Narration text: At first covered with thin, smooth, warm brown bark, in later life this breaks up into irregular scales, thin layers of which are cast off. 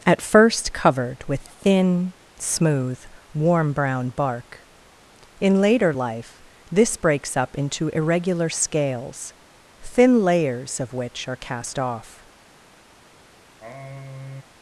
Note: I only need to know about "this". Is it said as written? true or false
true